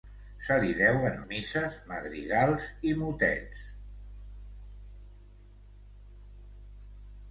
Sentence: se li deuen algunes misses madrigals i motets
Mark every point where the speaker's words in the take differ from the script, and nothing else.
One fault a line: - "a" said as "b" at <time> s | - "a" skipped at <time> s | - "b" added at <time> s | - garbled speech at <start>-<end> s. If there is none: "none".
- "algunes" skipped at 1.2 s